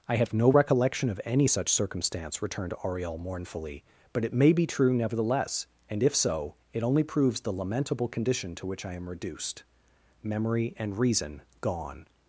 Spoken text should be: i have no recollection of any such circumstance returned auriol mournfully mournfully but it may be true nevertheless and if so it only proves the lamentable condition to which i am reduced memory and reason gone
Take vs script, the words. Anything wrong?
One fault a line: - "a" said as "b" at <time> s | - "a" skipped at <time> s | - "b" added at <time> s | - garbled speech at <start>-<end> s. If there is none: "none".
- "mournfully" skipped at 3.8 s